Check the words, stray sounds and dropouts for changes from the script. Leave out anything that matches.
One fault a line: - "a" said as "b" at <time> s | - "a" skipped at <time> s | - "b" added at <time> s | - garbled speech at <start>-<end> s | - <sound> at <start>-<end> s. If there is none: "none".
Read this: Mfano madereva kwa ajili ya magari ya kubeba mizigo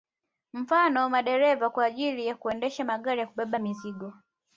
- "kuendesha" added at 2.4 s